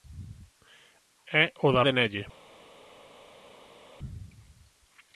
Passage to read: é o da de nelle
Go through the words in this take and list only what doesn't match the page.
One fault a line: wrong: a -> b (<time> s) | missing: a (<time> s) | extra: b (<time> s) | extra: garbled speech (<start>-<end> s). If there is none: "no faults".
no faults